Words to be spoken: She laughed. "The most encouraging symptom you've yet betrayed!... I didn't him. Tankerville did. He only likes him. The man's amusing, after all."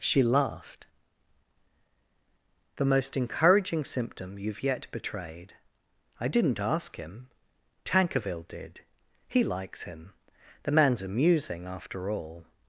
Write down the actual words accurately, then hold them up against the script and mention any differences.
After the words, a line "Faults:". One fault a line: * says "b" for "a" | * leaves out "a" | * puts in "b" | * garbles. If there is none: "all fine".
She laughed. "The most encouraging symptom you've yet betrayed!... I didn't ask him. Tankerville did. He likes him. The man's amusing, after all."
Faults:
* puts in "ask"
* leaves out "only"